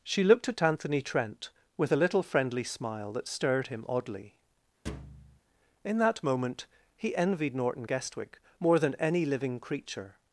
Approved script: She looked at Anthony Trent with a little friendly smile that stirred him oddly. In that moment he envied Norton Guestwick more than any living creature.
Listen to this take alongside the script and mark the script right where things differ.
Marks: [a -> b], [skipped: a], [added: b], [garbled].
She looked at Anthony Trent with a little friendly smile that stirred him oddly. In that moment he envied Norton Guestwick more than any living creature.